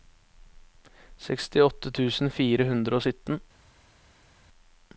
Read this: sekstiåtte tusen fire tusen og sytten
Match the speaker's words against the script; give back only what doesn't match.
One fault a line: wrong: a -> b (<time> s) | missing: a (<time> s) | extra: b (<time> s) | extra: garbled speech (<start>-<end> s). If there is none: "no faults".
wrong: tusen -> hundre (2.7 s)